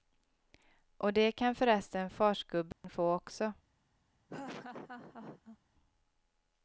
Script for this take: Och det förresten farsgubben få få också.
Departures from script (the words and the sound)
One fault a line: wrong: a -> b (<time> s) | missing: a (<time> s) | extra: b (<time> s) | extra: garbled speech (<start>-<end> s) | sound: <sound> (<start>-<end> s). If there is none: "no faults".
extra: kan (1.3 s)
sound: dropout (2.7-2.8 s)
missing: få (3.1 s)
sound: laugh (4.3-5.6 s)